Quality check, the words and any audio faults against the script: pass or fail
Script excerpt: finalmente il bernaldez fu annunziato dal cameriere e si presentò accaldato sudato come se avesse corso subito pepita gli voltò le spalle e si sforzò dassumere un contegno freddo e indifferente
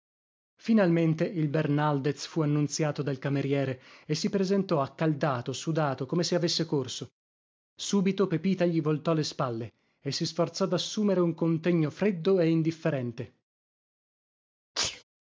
fail